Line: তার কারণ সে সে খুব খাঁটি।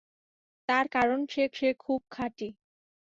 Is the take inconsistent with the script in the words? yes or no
no